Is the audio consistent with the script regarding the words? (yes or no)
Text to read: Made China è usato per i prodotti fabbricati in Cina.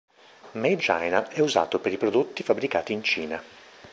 yes